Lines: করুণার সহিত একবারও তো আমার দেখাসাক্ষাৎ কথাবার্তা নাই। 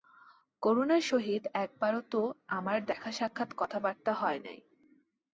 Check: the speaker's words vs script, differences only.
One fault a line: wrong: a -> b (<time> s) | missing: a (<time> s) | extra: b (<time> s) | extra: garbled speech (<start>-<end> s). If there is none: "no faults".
extra: হয় (4.1 s)